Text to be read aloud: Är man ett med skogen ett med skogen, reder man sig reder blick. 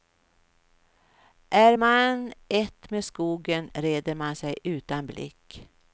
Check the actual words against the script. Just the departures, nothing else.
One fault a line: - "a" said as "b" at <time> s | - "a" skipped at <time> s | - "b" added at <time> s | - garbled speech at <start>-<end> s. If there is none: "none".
- "ett med skogen" skipped at 3.7 s
- "reder" said as "utan" at 4.6 s